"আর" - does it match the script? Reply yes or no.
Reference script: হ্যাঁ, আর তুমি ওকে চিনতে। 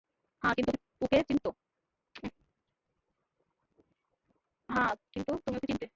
no